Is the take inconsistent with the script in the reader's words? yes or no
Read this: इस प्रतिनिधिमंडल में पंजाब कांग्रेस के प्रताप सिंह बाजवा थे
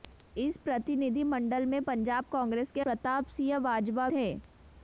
no